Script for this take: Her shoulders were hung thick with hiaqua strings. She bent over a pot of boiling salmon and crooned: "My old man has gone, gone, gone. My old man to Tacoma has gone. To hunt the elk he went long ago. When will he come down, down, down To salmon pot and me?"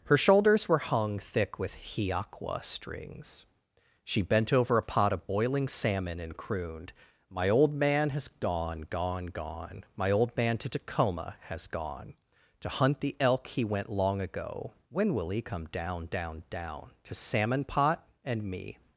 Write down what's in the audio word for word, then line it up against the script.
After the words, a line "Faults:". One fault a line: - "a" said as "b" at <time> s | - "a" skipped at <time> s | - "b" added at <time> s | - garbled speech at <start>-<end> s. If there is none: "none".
Her shoulders were hung thick with hiaqua strings. She bent over a pot of boiling salmon and crooned: "My old man has gone, gone, gone. My old man to Tacoma has gone. To hunt the elk he went long ago. When will he come down, down, down To salmon pot and me?"
Faults:
none